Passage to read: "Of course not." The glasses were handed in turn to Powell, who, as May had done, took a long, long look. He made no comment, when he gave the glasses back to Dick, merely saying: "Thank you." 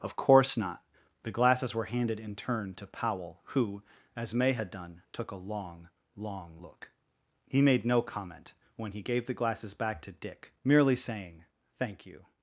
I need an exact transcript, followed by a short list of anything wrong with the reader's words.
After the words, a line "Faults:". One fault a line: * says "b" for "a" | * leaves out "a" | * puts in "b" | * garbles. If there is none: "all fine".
"Of course not." The glasses were handed in turn to Powell, who, as May had done, took a long, long look. He made no comment, when he gave the glasses back to Dick, merely saying: "Thank you."
Faults:
all fine